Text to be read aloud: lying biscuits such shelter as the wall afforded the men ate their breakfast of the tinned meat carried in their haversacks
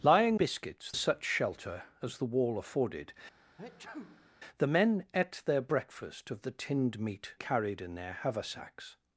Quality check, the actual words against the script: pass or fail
pass